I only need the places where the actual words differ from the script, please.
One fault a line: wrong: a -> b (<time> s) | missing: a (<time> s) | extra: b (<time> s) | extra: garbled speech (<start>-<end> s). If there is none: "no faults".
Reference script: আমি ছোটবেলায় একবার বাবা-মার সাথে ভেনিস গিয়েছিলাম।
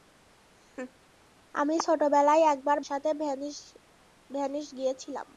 missing: বাবা-মার (2.8 s)